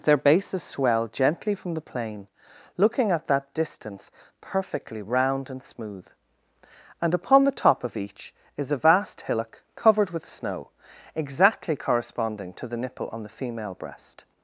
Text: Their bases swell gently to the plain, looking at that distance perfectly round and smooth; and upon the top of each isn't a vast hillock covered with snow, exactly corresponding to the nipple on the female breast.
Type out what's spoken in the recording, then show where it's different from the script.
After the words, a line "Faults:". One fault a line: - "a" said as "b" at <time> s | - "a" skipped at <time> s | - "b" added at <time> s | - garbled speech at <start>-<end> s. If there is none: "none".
Their bases swell gently from the plain, looking at that distance perfectly round and smooth; and upon the top of each is a vast hillock covered with snow, exactly corresponding to the nipple on the female breast.
Faults:
- "to" said as "from" at 1.5 s
- "isn't" said as "is" at 8.6 s